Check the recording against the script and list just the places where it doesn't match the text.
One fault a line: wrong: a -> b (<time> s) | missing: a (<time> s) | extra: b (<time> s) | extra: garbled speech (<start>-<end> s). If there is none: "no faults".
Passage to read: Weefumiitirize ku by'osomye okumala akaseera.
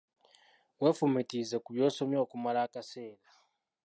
no faults